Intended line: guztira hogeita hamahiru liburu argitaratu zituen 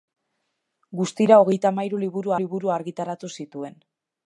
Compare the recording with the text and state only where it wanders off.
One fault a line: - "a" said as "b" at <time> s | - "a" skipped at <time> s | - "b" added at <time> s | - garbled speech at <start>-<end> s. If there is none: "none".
- "liburu" added at 2.4 s